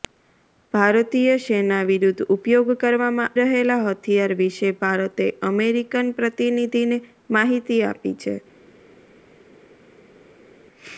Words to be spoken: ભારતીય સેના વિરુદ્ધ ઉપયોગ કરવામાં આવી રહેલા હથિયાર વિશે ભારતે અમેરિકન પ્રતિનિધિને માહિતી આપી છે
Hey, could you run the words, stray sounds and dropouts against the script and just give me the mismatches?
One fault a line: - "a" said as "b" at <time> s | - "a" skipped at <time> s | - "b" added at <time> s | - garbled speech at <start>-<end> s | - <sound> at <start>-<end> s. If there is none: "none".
- "આવી" skipped at 3.4 s